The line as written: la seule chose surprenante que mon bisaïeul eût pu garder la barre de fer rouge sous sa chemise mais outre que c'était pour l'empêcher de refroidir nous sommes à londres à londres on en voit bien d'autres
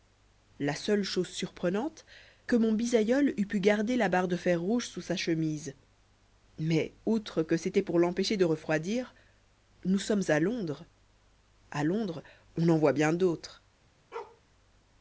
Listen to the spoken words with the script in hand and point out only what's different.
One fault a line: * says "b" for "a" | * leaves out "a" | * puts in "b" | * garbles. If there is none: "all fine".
all fine